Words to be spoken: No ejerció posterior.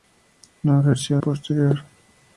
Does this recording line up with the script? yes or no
yes